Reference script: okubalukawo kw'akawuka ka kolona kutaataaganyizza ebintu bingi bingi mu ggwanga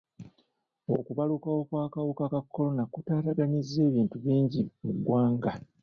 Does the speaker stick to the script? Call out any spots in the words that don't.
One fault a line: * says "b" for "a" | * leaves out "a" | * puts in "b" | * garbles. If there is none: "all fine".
* leaves out "bingi"